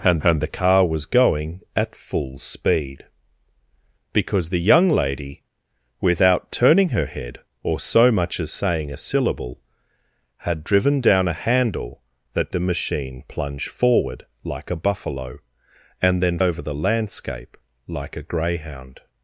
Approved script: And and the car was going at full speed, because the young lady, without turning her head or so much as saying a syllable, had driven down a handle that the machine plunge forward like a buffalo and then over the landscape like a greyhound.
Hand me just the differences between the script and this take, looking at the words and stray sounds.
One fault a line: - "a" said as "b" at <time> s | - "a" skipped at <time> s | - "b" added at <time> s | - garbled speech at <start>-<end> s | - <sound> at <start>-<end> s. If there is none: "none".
none